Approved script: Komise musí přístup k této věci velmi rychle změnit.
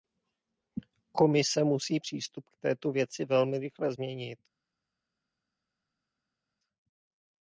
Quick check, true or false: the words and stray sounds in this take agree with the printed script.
true